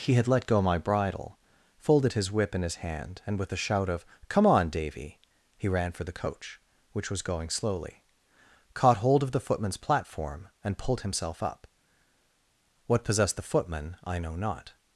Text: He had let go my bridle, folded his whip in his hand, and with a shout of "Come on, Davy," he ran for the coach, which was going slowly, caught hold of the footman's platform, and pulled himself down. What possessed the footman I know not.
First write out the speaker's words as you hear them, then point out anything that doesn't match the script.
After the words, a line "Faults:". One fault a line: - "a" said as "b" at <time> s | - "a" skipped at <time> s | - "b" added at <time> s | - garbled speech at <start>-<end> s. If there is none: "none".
He had let go my bridle, folded his whip in his hand, and with a shout of "Come on, Davy," he ran for the coach, which was going slowly, caught hold of the footman's platform, and pulled himself up. What possessed the footman I know not.
Faults:
- "down" said as "up" at 11.4 s